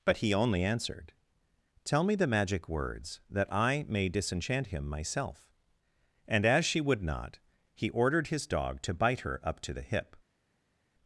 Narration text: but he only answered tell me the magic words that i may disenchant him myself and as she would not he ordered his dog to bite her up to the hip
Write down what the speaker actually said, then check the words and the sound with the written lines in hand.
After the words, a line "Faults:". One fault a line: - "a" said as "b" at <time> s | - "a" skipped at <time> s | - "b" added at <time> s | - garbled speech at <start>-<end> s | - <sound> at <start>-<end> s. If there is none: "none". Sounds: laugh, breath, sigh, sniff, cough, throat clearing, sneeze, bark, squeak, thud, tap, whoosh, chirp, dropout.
but he only answered tell me the magic words that i may disenchant him myself and as she would not he ordered his dog to bite her up to the hip
Faults:
none